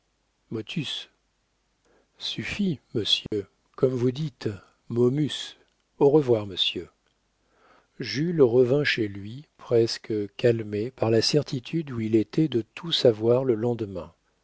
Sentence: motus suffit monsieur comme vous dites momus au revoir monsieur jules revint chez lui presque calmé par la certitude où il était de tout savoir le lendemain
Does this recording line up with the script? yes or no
yes